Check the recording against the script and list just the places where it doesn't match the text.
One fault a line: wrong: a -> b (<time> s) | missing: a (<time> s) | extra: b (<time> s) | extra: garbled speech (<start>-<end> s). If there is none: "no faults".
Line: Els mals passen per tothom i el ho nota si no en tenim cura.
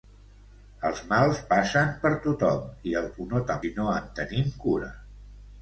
no faults